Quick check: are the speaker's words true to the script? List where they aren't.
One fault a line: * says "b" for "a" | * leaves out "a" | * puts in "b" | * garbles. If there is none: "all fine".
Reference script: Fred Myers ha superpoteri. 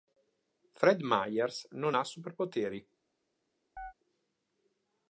* puts in "non"